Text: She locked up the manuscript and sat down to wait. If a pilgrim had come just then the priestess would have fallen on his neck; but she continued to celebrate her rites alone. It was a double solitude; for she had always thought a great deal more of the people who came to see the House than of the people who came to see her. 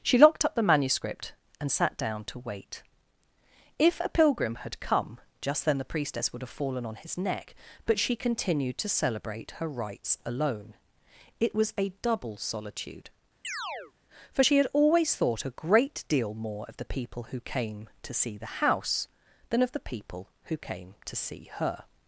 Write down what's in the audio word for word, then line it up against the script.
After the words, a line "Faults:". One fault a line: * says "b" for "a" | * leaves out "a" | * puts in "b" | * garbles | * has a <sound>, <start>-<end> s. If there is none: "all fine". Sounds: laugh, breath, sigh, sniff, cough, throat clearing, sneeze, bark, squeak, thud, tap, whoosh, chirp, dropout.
She locked up the manuscript and sat down to wait. If a pilgrim had come just then the priestess would have fallen on his neck; but she continued to celebrate her rites alone. It was a double solitude; for she had always thought a great deal more of the people who came to see the House than of the people who came to see her.
Faults:
* has a chirp, 13.4-13.9 s